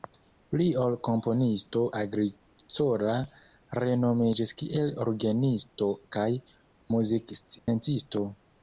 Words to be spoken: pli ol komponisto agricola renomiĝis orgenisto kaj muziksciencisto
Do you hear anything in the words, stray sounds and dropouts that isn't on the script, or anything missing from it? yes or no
yes